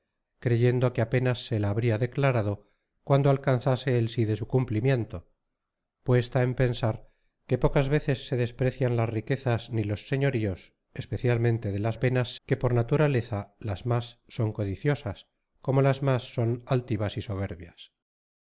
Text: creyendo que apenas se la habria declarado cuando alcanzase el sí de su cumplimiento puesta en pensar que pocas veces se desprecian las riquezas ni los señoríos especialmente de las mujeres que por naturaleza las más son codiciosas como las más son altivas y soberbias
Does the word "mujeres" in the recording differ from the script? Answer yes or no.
yes